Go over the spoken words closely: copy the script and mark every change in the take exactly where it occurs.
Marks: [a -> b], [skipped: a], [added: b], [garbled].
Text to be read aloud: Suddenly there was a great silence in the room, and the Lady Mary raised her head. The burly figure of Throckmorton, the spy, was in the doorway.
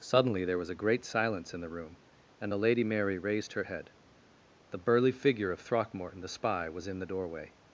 Suddenly there was a great silence in the room, and the Lady Mary raised her head. The burly figure of Throckmorton, the spy, was in the doorway.